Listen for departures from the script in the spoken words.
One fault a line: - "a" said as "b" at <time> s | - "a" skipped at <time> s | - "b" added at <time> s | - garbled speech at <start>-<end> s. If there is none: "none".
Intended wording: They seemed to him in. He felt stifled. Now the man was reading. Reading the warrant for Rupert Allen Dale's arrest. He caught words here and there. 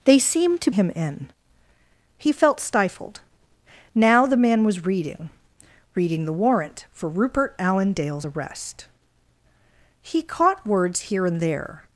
none